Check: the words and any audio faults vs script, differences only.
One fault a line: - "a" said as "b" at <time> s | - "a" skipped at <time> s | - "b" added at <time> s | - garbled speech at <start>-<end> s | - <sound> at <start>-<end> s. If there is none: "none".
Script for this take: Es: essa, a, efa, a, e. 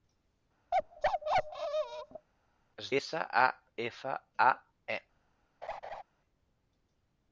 - bark at 0.7-2.3 s
- laugh at 5.6-6.0 s